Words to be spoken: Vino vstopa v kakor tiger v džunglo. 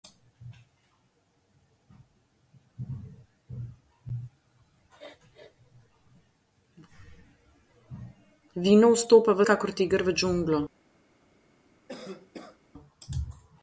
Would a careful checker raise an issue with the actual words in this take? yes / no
no